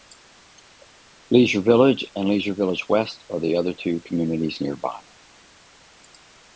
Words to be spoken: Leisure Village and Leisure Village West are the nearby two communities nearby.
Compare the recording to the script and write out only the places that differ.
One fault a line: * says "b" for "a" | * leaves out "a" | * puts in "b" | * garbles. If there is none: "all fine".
* says "other" for "nearby"